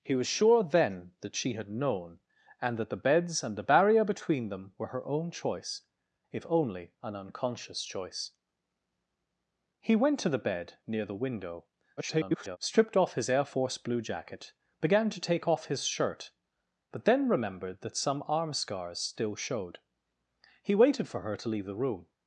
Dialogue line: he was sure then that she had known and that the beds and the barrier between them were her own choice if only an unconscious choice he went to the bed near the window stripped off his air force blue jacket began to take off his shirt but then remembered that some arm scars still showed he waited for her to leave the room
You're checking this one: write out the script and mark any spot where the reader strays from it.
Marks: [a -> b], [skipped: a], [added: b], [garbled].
he was sure then that she had known and that the beds and the barrier between them were her own choice if only an unconscious choice he went to the bed near the window [garbled] stripped off his air force blue jacket began to take off his shirt but then remembered that some arm scars still showed he waited for her to leave the room